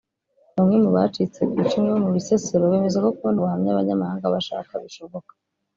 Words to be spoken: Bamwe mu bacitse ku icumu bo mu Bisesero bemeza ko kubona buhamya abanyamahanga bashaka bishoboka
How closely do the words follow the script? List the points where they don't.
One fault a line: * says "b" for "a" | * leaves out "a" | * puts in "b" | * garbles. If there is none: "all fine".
all fine